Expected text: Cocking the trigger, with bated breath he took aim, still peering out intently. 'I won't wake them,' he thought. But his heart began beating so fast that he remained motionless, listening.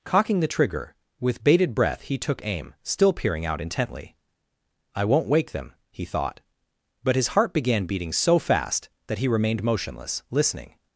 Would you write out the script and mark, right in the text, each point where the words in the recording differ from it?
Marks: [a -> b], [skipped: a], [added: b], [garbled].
Cocking the trigger, with bated breath he took aim, still peering out intently. 'I won't wake them,' he thought. But his heart began beating so fast that he remained motionless, listening.